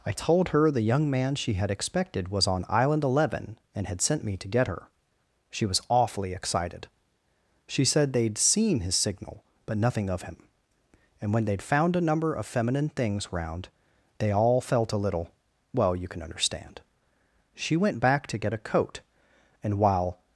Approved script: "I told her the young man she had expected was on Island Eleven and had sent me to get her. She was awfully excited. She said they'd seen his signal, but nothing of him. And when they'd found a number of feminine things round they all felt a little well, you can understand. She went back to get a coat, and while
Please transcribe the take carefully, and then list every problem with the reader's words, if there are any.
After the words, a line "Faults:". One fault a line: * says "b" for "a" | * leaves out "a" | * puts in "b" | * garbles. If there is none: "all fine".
"I told her the young man she had expected was on Island Eleven and had sent me to get her. She was awfully excited. She said they'd seen his signal, but nothing of him. And when they'd found a number of feminine things round they all felt a little well, you can understand. She went back to get a coat, and while
Faults:
all fine